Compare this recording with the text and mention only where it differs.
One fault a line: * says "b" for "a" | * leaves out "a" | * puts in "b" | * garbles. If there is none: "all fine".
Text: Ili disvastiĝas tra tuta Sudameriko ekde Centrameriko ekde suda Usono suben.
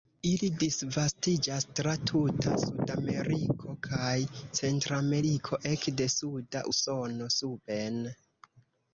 * says "kaj" for "ekde"